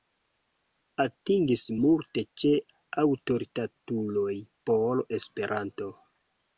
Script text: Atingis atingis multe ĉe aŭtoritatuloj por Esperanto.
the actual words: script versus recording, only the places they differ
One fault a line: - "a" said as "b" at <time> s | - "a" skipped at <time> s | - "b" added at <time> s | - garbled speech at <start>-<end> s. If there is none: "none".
- "atingis" skipped at 1.6 s